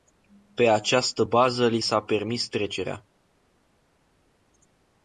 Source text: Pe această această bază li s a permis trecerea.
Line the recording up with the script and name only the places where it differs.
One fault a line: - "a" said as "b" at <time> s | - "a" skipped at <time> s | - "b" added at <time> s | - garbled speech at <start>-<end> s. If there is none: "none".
- "această" skipped at 1.2 s